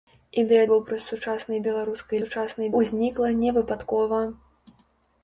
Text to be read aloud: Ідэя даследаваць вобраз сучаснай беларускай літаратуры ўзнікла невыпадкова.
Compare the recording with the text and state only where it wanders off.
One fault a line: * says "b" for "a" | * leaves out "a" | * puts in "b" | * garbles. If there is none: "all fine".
* leaves out "даследаваць"
* says "сучаснай" for "літаратуры"